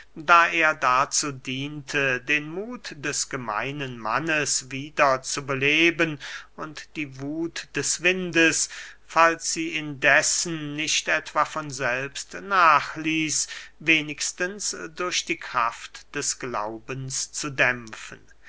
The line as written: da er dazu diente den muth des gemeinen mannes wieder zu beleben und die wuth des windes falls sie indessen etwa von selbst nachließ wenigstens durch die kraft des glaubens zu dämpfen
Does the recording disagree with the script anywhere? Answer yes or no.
yes